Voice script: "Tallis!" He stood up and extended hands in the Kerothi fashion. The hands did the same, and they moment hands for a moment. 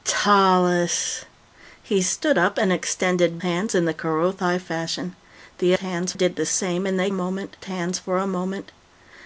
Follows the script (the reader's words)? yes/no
yes